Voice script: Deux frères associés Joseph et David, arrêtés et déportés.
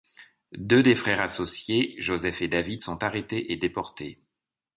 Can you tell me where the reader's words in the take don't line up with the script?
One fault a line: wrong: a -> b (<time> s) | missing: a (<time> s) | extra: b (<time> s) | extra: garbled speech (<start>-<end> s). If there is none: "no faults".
extra: des (0.8 s)
extra: sont (2.8 s)